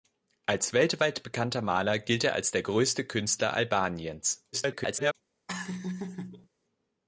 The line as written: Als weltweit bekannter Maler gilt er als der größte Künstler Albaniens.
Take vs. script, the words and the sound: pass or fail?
fail